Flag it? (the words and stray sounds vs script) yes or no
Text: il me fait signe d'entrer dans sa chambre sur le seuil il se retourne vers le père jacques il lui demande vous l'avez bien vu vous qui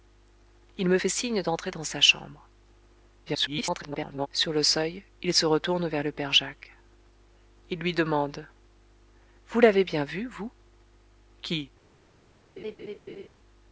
yes